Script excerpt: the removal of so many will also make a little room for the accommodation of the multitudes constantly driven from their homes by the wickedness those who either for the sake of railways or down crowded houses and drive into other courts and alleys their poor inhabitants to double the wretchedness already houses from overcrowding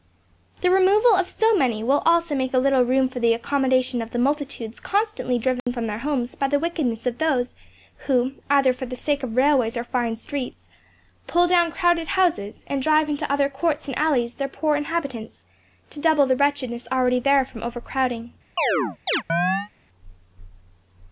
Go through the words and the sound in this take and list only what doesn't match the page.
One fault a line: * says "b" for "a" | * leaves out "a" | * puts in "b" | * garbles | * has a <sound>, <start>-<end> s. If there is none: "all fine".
* has a dropout, 5.6-5.7 s
* puts in "of"
* puts in "fine streets pull"
* says "there" for "houses"
* has a chirp, 18.6-19.7 s